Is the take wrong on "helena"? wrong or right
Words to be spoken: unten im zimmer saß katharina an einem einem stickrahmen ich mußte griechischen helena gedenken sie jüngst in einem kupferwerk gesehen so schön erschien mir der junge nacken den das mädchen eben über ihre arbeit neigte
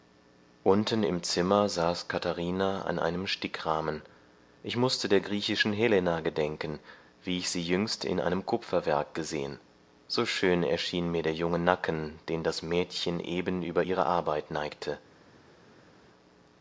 right